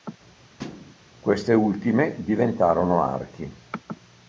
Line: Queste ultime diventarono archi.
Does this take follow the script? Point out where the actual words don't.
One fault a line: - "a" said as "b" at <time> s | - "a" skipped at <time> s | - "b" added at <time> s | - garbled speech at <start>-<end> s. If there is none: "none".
none